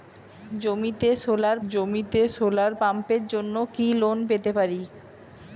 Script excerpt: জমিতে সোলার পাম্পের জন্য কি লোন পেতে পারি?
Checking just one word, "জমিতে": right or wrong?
right